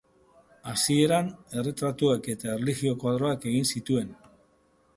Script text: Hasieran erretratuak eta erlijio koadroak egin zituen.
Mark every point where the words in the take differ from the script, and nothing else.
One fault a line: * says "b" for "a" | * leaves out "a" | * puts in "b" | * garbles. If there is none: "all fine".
all fine